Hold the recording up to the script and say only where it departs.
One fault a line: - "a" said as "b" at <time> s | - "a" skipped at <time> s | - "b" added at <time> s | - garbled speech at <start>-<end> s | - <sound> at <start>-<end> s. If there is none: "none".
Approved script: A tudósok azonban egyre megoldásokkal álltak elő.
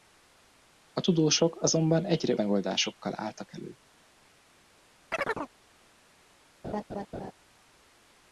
- chirp at 5.1-5.5 s
- laugh at 6.6-7.3 s